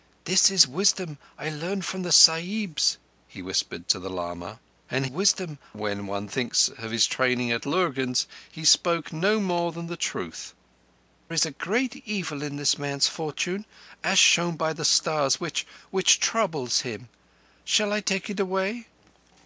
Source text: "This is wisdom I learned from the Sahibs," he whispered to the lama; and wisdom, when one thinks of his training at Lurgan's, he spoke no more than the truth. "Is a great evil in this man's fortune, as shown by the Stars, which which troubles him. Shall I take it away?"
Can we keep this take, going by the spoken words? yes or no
yes